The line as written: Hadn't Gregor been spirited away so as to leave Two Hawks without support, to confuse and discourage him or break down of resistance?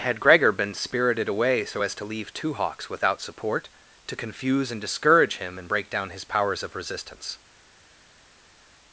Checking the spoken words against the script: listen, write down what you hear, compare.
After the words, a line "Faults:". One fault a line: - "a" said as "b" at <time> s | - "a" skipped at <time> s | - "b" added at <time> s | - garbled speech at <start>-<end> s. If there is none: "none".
Had Gregor been spirited away so as to leave Two Hawks without support, to confuse and discourage him and break down his powers of resistance?
Faults:
- "Hadn't" said as "Had" at 0.0 s
- "or" said as "and" at 5.6 s
- "his powers" added at 6.1 s